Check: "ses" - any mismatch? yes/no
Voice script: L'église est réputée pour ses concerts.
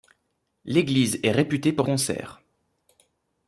yes